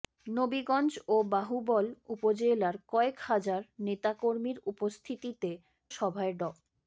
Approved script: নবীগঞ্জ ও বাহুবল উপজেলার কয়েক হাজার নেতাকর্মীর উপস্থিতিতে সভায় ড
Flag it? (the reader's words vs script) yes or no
no